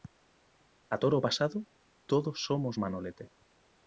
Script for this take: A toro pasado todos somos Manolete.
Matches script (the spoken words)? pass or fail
pass